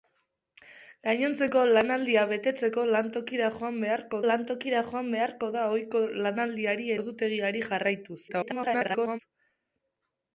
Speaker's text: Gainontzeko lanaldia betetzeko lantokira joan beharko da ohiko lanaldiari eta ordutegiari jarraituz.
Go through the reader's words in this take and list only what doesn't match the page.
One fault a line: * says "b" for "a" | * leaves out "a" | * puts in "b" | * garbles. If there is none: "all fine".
* puts in "lantokira joan beharko"
* leaves out "eta"
* garbles